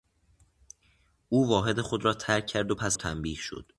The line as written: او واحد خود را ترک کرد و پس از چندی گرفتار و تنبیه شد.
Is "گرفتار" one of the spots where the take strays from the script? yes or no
yes